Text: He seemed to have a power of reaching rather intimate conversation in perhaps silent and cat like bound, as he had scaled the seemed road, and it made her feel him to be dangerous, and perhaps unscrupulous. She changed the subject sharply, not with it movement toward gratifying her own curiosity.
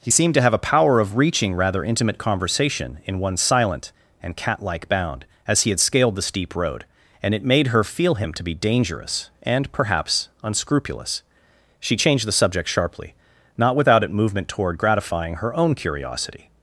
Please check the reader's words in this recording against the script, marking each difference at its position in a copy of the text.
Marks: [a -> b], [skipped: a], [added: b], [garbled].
He seemed to have a power of reaching rather intimate conversation in [perhaps -> one] silent and cat like bound, as he had scaled the [seemed -> steep] road, and it made her feel him to be dangerous, and perhaps unscrupulous. She changed the subject sharply, not [with -> without] it movement toward gratifying her own curiosity.